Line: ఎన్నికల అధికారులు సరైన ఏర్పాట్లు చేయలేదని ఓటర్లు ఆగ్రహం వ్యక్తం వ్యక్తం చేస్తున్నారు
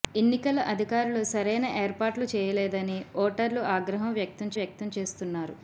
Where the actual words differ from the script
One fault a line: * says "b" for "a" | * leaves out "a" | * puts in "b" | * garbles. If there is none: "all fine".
all fine